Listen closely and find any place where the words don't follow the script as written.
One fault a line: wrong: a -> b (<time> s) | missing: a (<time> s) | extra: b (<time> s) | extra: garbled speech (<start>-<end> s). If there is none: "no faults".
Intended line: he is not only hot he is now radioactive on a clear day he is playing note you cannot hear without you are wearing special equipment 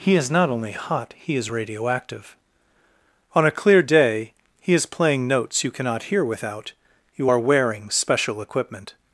missing: now (1.5 s)
wrong: note -> notes (5.3 s)